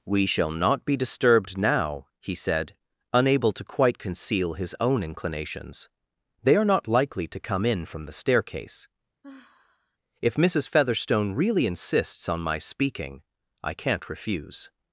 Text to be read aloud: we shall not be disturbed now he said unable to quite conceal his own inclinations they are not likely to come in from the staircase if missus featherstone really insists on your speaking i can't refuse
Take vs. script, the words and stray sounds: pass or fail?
fail